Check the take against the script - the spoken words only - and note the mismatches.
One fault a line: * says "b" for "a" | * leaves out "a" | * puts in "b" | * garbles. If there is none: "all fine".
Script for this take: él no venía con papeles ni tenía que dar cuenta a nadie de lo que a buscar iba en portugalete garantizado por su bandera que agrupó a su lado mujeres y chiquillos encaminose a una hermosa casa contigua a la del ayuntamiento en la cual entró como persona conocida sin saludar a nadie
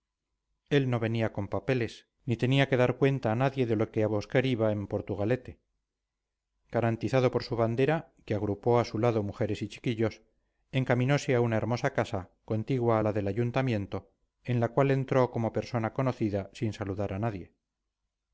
all fine